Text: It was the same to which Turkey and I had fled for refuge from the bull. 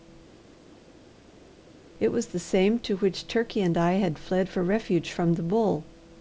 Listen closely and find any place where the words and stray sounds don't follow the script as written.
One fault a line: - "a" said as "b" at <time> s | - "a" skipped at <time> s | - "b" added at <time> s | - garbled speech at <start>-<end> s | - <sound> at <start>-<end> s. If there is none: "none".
none